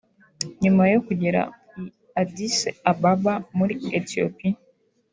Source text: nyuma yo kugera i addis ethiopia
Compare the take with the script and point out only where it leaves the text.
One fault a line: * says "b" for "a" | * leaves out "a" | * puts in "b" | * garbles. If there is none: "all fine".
* puts in "ababa muri"